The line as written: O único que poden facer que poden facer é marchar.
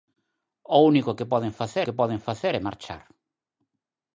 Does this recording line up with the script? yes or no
yes